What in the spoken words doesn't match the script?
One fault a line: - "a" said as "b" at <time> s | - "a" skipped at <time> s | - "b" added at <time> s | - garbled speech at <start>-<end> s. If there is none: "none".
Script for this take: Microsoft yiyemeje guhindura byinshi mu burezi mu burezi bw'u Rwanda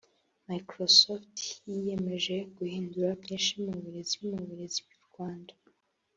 none